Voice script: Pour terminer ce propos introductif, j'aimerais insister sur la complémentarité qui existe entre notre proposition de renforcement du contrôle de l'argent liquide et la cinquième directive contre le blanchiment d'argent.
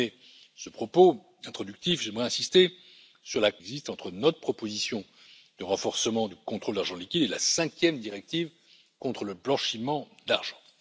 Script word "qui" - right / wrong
wrong